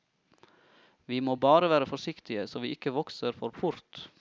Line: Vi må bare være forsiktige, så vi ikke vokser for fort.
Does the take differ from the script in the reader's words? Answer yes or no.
no